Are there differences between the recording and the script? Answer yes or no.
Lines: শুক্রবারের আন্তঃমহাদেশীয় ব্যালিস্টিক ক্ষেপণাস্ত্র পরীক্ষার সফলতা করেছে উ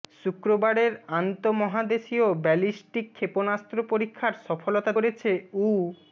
no